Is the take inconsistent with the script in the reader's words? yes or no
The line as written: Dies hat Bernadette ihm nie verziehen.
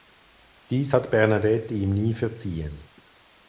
no